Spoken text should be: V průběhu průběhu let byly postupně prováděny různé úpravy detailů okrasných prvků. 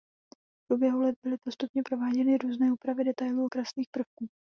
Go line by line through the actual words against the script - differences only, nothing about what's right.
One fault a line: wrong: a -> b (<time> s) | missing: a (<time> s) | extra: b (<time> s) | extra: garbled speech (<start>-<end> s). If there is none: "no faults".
missing: průběhu (1.0 s)